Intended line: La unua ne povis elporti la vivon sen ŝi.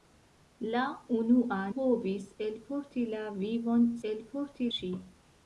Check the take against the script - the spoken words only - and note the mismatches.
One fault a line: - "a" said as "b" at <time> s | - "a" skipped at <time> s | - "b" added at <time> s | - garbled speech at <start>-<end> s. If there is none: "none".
- "ne" skipped at 1.6 s
- "sen" said as "elporti" at 4.1 s